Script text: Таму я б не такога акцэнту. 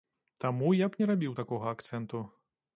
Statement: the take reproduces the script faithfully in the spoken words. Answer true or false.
false